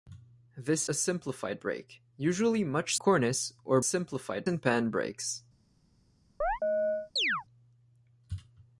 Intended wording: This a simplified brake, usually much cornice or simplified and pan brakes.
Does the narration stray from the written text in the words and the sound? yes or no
yes